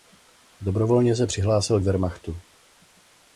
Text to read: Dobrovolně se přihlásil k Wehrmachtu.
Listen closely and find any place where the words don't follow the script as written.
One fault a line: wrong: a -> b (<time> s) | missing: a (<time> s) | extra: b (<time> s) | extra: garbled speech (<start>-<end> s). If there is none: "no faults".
no faults